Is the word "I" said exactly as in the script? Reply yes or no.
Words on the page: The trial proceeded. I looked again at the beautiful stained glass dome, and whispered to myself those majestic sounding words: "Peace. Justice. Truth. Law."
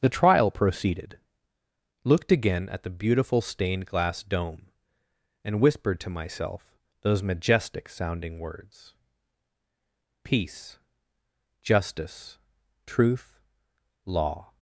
no